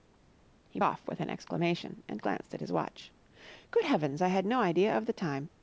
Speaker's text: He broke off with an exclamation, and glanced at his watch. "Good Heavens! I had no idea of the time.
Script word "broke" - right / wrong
wrong